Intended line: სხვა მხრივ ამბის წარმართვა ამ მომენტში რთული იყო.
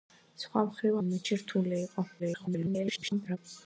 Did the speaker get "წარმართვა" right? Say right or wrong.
wrong